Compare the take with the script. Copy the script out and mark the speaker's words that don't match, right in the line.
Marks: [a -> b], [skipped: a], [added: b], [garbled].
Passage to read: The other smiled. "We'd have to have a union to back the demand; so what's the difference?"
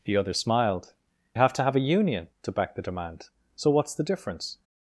The other smiled. [skipped: "We'd] have to have a union to back the demand; so what's the difference?"